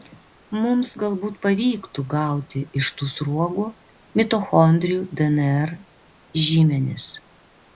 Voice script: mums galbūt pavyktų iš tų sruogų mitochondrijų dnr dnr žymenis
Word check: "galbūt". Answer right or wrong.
right